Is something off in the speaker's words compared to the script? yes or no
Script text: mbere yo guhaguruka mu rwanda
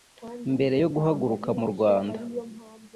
no